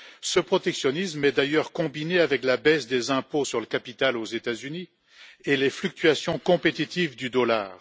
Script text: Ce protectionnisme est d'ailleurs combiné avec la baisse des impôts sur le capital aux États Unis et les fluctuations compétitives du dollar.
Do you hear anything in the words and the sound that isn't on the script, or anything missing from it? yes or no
no